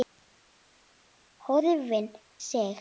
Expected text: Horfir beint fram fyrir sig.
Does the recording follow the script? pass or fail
fail